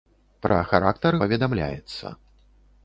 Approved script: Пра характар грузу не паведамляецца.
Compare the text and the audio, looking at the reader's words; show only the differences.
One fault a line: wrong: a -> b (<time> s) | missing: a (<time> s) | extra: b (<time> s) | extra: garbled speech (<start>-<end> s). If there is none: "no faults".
missing: грузу не (1.2 s)